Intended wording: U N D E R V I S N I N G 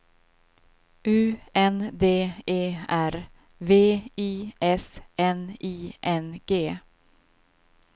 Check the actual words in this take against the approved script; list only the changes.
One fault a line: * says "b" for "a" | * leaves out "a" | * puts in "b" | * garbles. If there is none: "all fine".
all fine